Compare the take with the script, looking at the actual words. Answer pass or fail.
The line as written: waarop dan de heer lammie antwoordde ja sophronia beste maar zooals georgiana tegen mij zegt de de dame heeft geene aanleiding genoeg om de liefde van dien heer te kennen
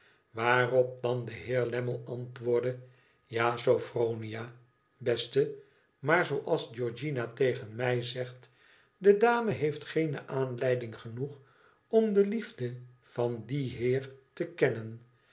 fail